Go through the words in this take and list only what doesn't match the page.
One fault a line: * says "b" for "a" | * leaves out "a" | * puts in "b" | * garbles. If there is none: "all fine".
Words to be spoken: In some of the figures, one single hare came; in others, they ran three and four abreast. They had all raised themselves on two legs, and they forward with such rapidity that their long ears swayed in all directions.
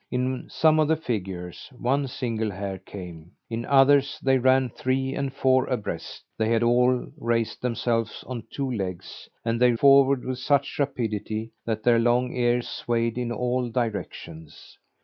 all fine